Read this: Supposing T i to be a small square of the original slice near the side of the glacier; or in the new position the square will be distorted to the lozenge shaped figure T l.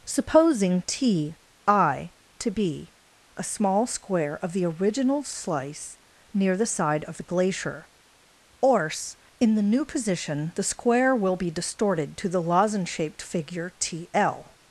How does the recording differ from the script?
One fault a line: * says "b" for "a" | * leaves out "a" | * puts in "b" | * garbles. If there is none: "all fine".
all fine